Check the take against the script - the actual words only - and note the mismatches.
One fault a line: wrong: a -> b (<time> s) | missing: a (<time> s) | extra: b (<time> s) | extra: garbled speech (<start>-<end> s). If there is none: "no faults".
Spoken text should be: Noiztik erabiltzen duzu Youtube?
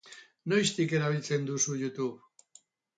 no faults